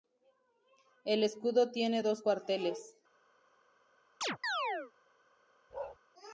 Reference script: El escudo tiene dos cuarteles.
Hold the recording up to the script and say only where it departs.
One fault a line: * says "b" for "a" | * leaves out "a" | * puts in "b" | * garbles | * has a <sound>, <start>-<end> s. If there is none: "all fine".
* has a chirp, 4.2-4.9 s
* has a bark, 5.7-6.0 s